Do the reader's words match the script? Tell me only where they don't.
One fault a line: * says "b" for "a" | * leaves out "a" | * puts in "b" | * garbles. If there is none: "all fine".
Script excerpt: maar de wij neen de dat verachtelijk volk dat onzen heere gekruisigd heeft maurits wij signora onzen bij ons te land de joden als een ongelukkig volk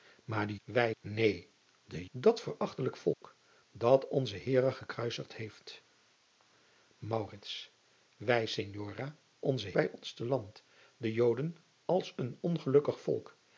all fine